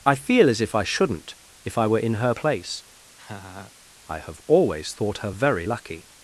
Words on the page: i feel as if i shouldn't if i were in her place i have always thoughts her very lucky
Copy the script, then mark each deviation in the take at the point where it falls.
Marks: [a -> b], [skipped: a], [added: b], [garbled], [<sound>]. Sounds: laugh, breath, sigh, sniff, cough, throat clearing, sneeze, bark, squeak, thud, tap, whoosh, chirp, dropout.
i feel as if i shouldn't if i were in her place [laugh] i have always [thoughts -> thought] her very lucky